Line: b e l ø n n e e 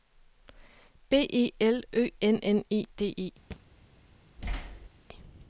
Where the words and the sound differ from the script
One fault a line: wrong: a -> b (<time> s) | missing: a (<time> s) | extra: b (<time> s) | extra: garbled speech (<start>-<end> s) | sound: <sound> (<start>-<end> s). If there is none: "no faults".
extra: d (3.0 s)
sound: thud (3.5-3.6 s)
sound: thud (4.4-4.9 s)